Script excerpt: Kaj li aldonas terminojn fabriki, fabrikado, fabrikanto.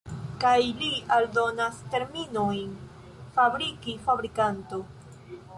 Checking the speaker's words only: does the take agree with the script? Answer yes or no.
no